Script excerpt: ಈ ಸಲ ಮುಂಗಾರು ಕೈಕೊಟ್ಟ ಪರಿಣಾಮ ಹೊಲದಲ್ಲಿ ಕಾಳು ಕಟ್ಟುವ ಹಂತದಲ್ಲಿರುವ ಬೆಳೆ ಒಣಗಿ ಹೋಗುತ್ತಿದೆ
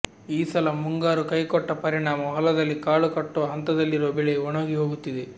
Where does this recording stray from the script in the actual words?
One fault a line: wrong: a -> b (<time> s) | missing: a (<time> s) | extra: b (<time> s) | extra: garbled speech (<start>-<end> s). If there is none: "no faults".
no faults